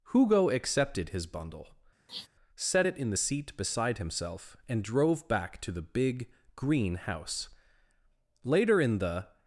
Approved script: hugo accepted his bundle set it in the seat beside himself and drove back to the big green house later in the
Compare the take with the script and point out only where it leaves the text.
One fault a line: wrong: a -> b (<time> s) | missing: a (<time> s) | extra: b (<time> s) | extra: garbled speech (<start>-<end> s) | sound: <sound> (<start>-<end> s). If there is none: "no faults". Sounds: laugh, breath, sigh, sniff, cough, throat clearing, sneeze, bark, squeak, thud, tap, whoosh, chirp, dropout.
sound: sniff (2.1-2.3 s)